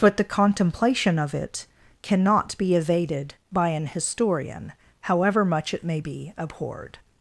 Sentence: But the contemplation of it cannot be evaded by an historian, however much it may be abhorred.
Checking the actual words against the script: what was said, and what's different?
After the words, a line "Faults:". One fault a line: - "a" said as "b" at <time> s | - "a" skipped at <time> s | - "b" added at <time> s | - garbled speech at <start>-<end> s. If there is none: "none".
But the contemplation of it cannot be evaded by an historian, however much it may be abhorred.
Faults:
none